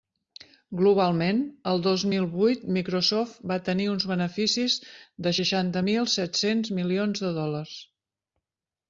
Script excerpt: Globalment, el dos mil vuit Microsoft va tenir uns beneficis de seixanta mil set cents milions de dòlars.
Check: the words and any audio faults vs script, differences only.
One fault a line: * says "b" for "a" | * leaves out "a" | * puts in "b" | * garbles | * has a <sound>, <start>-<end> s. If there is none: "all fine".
all fine